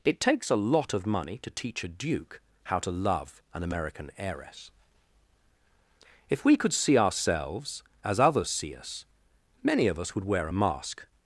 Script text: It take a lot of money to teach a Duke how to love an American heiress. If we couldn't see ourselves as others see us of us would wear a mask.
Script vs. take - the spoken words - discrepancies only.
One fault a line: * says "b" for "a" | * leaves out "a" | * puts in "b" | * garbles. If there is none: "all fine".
* says "takes" for "take"
* says "could" for "couldn't"
* puts in "many"